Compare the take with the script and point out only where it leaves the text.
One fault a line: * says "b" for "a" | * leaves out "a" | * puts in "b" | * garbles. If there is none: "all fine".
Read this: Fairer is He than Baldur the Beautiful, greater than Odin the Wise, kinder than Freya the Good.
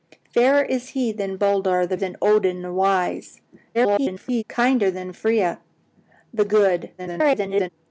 * leaves out "Beautiful greater"
* garbles
* garbles